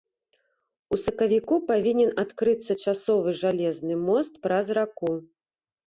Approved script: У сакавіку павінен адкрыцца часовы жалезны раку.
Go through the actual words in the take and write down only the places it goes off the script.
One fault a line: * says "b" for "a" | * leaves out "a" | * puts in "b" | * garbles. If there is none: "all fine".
* puts in "мост праз"